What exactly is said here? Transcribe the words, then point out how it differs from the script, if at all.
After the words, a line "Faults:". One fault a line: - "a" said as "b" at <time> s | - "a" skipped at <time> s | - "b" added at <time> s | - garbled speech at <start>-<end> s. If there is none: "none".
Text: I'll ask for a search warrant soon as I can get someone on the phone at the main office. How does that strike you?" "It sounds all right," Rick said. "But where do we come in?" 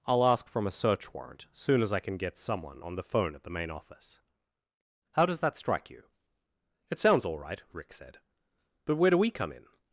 I'll ask from a search warrant soon as I can get someone on the phone at the main office. How does that strike you?" "It sounds all right," Rick said. "But where do we come in?"
Faults:
- "for" said as "from" at 0.5 s